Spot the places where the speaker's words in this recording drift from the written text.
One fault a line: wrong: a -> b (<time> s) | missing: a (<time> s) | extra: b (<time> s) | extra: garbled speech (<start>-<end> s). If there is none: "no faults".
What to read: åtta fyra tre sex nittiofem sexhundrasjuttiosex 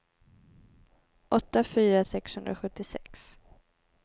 missing: tre sex nittiofem (2.0 s)